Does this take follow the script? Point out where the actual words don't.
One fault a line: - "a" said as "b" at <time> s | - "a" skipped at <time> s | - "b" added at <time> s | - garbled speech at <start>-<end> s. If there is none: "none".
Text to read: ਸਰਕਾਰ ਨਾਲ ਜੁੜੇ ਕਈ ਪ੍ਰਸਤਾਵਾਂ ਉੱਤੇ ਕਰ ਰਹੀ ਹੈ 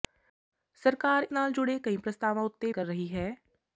none